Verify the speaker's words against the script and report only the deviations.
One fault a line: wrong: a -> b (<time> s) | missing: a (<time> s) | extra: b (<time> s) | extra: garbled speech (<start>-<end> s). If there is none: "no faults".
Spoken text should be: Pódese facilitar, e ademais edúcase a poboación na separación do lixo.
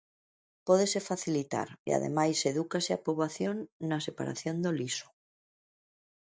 no faults